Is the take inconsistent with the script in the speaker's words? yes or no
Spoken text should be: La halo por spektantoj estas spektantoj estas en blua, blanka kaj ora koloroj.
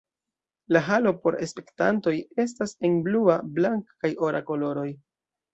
yes